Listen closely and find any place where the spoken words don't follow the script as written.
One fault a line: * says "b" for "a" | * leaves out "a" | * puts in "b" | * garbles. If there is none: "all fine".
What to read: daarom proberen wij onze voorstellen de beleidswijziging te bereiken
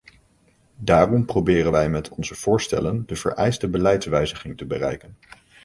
* puts in "met"
* puts in "vereiste"